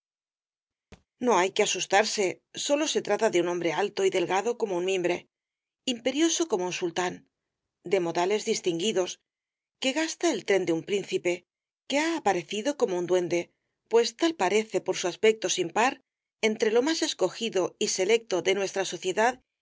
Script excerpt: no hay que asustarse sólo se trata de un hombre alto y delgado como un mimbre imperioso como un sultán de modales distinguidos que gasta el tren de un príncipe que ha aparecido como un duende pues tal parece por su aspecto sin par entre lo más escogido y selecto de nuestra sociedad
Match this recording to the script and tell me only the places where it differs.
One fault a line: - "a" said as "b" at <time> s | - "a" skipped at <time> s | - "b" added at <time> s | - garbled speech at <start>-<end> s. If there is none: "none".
none